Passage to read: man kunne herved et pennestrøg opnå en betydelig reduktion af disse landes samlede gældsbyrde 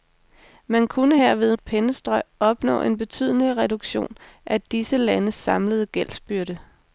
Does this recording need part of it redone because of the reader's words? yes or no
no